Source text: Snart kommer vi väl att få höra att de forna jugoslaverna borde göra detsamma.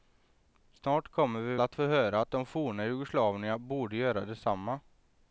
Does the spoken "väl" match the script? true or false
false